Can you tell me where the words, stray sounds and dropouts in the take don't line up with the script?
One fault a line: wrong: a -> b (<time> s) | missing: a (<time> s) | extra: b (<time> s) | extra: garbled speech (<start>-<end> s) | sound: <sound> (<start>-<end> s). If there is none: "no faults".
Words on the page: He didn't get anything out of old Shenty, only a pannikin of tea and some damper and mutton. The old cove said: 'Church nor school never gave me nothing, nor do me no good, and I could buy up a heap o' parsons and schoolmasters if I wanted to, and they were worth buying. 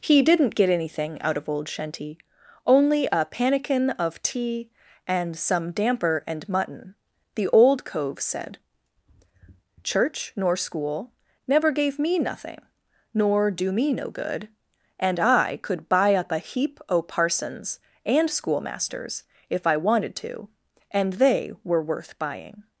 no faults